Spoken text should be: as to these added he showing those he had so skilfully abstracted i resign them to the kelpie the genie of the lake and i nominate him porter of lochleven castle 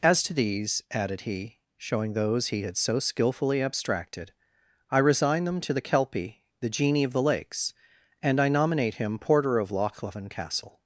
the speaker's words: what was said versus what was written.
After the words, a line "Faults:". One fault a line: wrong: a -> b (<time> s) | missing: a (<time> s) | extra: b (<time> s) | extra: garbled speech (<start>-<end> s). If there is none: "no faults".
as to these added he showing those he had so skilfully abstracted i resign them to the kelpie the genie of the lakes and i nominate him porter of lochleven castle
Faults:
wrong: lake -> lakes (7.2 s)